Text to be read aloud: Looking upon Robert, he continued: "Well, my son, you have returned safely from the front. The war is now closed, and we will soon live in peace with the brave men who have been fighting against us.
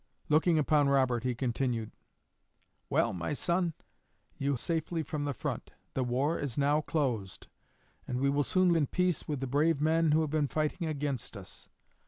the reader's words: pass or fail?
fail